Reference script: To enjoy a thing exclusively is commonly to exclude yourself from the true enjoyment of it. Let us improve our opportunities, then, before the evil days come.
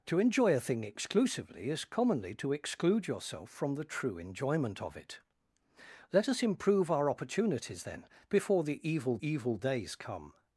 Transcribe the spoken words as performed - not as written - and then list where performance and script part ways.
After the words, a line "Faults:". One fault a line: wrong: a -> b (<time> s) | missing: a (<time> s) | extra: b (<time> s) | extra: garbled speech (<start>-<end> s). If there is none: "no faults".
To enjoy a thing exclusively is commonly to exclude yourself from the true enjoyment of it. Let us improve our opportunities, then, before the evil evil days come.
Faults:
extra: evil (9.3 s)